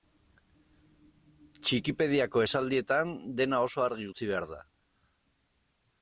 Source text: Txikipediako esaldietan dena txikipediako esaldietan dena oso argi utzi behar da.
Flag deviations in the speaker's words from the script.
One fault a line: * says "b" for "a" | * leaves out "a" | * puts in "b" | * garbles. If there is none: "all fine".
* leaves out "txikipediako esaldietan dena"